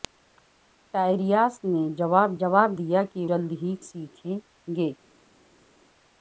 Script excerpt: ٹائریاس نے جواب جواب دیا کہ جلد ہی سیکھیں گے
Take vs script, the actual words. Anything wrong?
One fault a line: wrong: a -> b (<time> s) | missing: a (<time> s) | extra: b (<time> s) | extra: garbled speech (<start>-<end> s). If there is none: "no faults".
no faults